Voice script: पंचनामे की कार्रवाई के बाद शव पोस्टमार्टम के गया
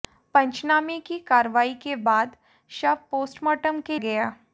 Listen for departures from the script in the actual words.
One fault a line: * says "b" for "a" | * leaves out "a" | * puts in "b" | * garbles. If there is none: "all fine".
all fine